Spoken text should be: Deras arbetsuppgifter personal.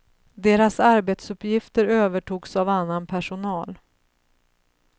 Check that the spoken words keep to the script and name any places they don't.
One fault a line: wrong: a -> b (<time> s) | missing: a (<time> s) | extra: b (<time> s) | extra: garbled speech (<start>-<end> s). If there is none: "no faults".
extra: övertogs av annan (1.9 s)